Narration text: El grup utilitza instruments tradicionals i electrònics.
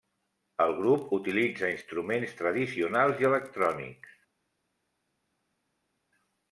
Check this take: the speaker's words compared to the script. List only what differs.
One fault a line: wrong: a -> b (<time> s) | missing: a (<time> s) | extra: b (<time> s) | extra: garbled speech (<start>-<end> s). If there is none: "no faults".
no faults